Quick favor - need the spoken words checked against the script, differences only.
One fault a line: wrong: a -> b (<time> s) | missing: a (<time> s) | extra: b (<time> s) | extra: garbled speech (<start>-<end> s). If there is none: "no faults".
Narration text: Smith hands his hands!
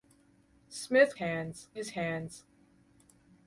no faults